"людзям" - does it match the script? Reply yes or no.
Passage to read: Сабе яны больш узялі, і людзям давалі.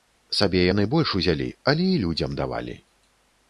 yes